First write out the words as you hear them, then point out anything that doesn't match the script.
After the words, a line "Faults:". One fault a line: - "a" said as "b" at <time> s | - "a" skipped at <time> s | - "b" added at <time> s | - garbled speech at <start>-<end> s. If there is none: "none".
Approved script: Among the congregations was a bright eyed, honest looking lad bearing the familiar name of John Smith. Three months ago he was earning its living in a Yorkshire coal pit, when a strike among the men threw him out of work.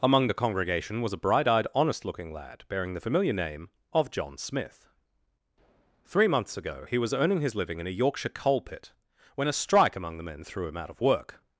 Among the congregation was a bright eyed, honest looking lad bearing the familiar name of John Smith. Three months ago he was earning his living in a Yorkshire coal pit, when a strike among the men threw him out of work.
Faults:
- "congregations" said as "congregation" at 0.3 s
- "its" said as "his" at 7.4 s